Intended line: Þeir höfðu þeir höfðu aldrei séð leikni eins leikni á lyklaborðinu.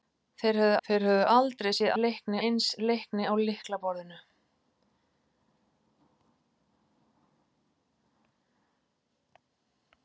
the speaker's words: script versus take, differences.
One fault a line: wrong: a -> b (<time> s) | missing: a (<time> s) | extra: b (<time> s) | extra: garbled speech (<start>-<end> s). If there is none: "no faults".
no faults